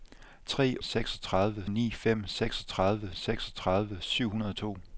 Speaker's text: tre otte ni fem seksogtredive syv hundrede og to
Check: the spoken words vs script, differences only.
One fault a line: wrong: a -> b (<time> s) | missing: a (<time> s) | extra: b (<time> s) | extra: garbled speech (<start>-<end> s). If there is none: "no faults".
wrong: otte -> seksogtredive (0.8 s)
extra: seksogtredive (3.1 s)